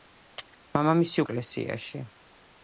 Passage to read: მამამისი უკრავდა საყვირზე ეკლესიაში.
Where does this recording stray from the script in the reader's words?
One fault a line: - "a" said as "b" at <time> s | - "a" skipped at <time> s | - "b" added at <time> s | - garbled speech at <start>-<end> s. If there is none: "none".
- "უკრავდა საყვირზე" skipped at 1.2 s